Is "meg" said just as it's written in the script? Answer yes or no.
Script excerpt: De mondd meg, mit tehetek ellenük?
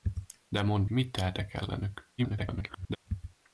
no